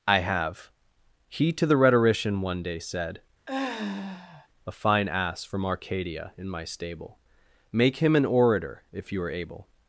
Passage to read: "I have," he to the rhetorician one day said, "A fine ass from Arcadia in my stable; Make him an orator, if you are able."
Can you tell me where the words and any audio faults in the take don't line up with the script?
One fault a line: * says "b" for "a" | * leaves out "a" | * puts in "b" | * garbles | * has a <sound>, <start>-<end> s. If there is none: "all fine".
* has a sigh, 3.5-4.5 s